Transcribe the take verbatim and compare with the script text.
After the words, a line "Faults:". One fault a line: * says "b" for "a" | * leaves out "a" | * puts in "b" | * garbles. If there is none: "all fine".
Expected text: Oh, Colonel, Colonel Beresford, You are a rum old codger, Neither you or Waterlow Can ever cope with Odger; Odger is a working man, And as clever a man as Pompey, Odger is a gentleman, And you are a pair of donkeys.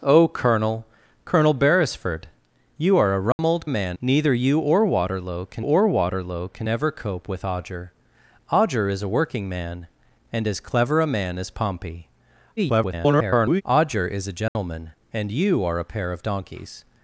Oh, Colonel, Colonel Beresford, You are a rum old man, Neither you or Waterlow Can or Waterlow Can ever cope with Odger; Odger is a working man, And as clever a man as Pompey, [garbled] Odger is a gentleman, And you are a pair of donkeys.
Faults:
* says "man" for "codger"
* puts in "or Waterlow Can"
* garbles